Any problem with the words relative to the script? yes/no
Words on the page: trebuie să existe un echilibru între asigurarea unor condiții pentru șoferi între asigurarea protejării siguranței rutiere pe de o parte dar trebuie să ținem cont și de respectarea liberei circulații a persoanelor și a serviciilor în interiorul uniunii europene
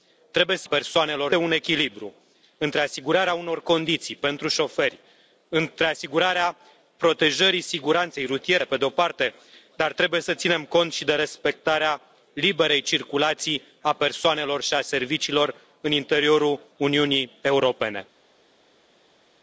yes